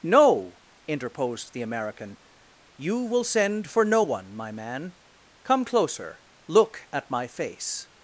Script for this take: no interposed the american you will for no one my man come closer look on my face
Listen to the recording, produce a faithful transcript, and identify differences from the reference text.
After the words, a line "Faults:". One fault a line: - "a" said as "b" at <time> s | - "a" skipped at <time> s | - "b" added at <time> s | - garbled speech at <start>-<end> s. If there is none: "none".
no interposed the american you will send for no one my man come closer look at my face
Faults:
- "send" added at 3.2 s
- "on" said as "at" at 6.9 s